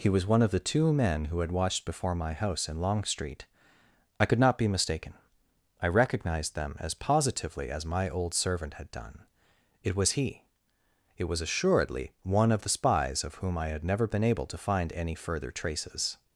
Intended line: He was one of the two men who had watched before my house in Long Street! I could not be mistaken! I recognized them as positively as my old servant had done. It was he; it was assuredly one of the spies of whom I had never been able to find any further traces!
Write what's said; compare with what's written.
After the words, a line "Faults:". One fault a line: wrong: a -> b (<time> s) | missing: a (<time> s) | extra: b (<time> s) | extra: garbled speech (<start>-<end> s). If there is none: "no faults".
He was one of the two men who had watched before my house in Long Street! I could not be mistaken! I recognized them as positively as my old servant had done. It was he; it was assuredly one of the spies of whom I had never been able to find any further traces!
Faults:
no faults